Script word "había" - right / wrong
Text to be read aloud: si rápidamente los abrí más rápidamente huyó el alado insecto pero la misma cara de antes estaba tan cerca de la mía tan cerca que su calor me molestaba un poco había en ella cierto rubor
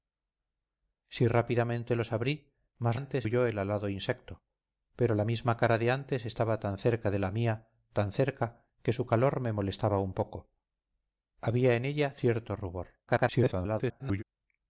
right